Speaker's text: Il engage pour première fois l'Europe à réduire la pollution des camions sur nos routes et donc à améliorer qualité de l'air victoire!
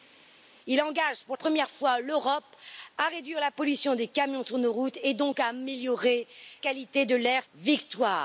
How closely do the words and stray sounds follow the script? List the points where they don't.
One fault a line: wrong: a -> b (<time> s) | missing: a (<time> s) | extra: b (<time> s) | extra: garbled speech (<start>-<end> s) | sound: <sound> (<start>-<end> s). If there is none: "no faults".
no faults